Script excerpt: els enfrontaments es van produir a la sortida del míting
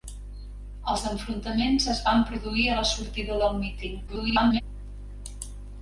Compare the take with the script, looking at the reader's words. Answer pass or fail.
fail